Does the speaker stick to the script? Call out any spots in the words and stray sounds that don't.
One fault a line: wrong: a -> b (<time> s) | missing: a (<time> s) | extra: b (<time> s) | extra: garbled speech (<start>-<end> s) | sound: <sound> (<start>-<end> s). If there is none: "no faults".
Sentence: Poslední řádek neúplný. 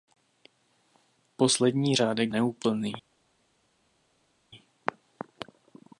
no faults